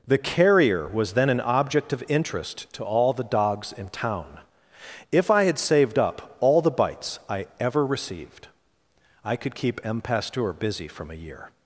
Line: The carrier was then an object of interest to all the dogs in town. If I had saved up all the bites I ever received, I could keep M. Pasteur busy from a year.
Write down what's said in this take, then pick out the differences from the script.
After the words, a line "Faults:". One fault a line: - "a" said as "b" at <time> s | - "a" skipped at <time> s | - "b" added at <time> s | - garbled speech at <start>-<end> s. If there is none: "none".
The carrier was then an object of interest to all the dogs in town. If I had saved up all the bites I ever received, I could keep M. Pasteur busy from a year.
Faults:
none